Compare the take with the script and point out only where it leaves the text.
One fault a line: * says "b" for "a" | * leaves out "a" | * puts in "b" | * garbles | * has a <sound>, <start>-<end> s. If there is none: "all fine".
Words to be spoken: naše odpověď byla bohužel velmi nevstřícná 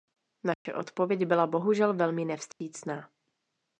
* has a dropout, 0.5-0.7 s
* has a dropout, 2.5-2.6 s